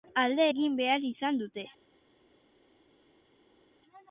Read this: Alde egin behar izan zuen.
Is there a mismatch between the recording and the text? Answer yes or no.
yes